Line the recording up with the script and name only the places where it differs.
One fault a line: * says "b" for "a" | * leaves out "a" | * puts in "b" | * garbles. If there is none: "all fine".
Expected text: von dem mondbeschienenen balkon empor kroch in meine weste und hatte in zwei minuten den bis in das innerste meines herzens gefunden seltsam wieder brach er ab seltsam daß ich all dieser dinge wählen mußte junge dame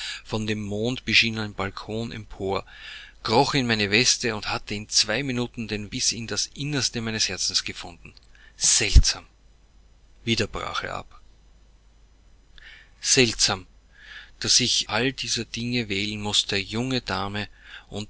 all fine